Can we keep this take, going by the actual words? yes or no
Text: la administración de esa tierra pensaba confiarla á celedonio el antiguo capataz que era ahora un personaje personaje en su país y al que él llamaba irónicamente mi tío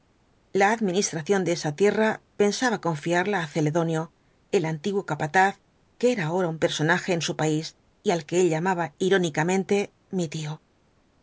no